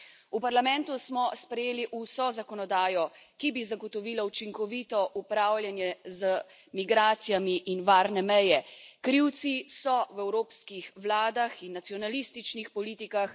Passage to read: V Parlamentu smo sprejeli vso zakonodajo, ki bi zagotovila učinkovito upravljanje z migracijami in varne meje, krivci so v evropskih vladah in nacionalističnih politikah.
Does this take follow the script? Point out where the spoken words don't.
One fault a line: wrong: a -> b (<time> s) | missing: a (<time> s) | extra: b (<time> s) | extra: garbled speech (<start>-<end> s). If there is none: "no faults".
no faults